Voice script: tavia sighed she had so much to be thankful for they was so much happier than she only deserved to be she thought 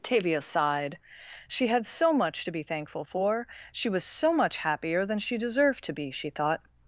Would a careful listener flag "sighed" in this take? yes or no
no